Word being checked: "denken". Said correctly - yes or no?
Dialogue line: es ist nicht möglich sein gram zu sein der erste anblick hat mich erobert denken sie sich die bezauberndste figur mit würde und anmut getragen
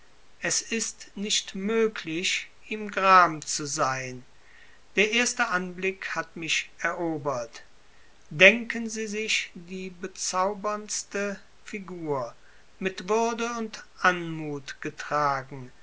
yes